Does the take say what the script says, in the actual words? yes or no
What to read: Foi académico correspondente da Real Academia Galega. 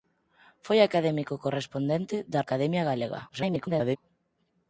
no